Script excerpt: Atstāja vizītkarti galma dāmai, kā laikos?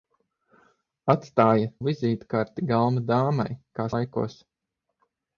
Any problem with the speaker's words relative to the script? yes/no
no